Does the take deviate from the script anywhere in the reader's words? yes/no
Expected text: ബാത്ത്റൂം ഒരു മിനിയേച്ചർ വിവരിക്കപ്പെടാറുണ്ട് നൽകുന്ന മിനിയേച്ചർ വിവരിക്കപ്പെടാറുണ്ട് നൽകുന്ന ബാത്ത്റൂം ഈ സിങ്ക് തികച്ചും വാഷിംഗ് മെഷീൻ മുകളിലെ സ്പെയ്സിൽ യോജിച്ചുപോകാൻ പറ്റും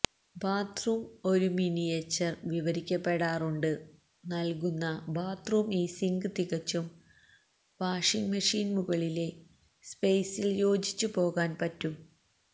yes